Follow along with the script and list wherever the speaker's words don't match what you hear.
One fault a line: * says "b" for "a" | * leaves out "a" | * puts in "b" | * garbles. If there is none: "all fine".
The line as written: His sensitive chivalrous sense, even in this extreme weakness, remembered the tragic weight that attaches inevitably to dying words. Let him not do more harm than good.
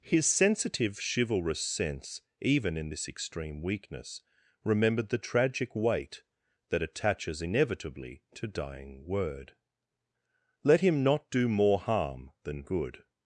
* says "word" for "words"